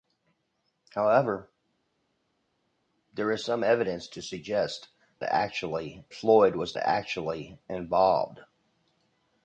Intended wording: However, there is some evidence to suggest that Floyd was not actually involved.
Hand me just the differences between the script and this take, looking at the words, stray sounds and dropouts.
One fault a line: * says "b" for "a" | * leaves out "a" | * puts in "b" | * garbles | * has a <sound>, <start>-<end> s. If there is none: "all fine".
* says "actually" for "that"
* leaves out "not"